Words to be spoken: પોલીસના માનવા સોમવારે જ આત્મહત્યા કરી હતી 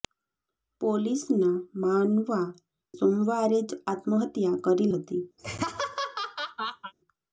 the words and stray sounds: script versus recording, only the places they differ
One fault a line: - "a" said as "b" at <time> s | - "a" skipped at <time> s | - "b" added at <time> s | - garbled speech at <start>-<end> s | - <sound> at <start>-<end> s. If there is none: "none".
- laugh at 5.4-6.9 s